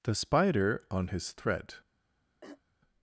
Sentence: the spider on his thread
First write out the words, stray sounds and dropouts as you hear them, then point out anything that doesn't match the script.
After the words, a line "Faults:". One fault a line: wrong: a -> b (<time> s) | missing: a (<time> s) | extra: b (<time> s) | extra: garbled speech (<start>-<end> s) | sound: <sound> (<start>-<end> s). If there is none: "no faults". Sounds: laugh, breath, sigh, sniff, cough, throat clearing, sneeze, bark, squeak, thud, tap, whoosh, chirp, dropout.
the spider on his thread
Faults:
sound: throat clearing (2.4-2.6 s)